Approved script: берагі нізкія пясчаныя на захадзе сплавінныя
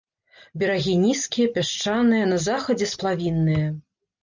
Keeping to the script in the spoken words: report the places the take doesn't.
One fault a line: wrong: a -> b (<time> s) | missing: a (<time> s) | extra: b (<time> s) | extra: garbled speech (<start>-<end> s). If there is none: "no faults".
no faults